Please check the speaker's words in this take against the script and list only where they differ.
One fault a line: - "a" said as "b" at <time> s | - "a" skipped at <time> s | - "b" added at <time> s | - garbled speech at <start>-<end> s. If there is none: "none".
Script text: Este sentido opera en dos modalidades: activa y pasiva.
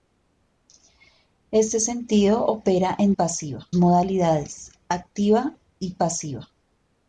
- "dos" said as "pasiva" at 3.1 s